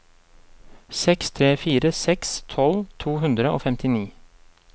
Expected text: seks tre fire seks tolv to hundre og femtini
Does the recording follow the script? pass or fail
pass